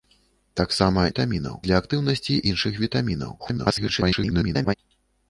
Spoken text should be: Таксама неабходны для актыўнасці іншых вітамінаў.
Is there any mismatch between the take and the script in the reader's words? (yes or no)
yes